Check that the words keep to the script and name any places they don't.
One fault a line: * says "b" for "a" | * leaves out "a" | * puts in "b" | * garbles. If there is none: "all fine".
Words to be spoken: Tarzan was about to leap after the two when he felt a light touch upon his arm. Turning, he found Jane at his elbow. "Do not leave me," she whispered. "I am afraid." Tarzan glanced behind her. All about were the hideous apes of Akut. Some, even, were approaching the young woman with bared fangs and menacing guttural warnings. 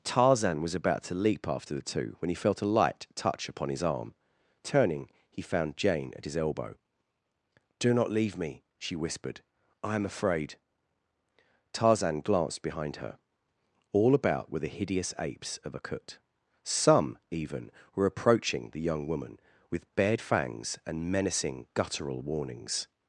all fine